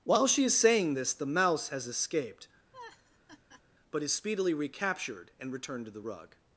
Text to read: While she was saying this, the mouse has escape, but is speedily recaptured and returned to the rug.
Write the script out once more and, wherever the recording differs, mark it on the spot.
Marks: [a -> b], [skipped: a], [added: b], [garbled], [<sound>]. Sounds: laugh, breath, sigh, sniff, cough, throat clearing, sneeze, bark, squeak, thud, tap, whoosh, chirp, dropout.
While she [was -> is] saying this, the mouse has [escape, -> escaped] [laugh] but is speedily recaptured and returned to the rug.